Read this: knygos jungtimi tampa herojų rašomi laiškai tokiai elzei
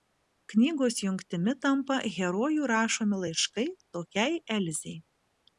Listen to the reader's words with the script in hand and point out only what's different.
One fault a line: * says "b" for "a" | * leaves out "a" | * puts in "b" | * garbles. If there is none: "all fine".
all fine